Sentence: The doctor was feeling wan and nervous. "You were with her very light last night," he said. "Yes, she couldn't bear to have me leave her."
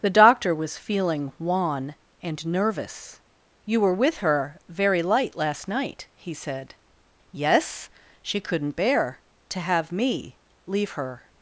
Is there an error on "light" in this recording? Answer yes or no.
no